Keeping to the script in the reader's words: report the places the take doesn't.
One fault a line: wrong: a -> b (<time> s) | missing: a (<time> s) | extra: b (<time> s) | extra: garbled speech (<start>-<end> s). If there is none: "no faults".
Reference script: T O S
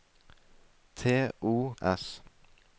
no faults